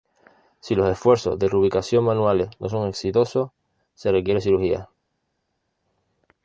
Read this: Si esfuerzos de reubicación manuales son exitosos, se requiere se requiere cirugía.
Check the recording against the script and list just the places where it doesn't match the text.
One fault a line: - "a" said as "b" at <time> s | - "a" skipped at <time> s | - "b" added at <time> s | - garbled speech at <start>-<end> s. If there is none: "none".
- "los" added at 0.7 s
- "no" added at 2.6 s
- "se requiere" skipped at 4.4 s